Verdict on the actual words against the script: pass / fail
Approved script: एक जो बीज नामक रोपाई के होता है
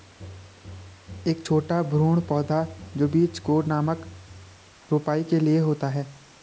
fail